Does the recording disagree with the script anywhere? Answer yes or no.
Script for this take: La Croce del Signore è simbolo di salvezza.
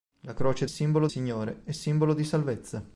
yes